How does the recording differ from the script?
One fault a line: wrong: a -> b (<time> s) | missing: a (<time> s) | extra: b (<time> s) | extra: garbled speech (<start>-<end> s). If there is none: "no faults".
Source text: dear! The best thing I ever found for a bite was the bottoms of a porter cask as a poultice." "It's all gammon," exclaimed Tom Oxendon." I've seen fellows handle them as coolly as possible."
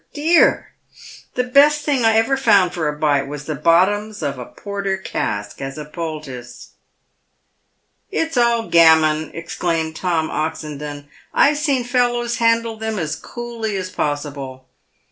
no faults